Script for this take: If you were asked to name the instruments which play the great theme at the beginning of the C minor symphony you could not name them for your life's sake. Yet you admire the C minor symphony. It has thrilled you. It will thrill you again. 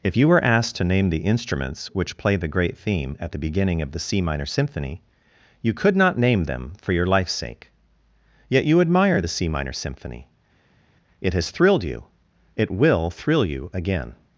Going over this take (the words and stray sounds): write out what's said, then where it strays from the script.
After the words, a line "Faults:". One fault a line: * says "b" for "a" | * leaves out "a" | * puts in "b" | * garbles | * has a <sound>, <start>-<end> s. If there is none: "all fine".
If you were asked to name the instruments which play the great theme at the beginning of the C minor symphony you could not name them for your life's sake. Yet you admire the C minor symphony. It has thrilled you. It will thrill you again.
Faults:
all fine